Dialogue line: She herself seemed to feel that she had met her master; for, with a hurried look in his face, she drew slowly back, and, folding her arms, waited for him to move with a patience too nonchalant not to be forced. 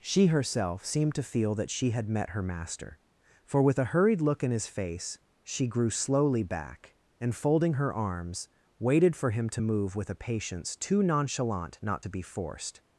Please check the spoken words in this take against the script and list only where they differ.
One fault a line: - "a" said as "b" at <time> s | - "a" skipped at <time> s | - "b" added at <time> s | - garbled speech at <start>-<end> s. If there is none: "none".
- "drew" said as "grew" at 5.7 s